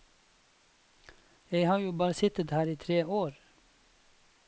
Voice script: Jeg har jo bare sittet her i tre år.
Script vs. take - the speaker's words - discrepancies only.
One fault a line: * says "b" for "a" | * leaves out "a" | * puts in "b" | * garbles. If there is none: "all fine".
all fine